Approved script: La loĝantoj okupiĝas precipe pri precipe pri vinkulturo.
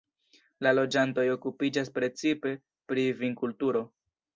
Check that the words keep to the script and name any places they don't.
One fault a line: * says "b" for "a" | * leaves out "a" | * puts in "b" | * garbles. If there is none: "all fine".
* leaves out "precipe pri"